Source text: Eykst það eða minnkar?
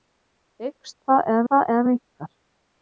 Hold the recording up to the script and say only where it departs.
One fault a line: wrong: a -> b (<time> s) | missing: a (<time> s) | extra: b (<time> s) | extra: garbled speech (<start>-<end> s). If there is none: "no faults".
extra: það eða (1.5 s)